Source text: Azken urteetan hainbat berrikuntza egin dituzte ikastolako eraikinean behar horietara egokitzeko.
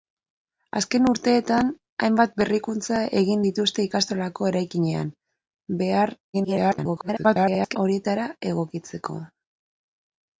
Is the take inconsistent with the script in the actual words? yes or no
yes